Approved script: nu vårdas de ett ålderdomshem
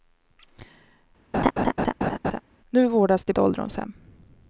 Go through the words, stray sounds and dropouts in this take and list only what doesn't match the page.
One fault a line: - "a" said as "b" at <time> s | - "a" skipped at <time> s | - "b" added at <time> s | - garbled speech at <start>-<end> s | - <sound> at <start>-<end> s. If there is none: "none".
- laugh at 1.3-2.4 s